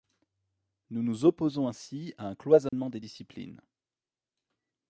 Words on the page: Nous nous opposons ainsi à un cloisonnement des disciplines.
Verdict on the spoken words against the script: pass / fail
pass